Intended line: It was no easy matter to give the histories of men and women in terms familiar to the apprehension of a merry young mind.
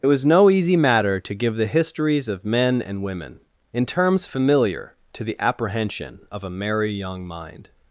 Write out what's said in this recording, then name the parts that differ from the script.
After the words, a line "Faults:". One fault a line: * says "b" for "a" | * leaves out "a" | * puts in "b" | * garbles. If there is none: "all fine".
It was no easy matter to give the histories of men and women in terms familiar to the apprehension of a merry young mind.
Faults:
all fine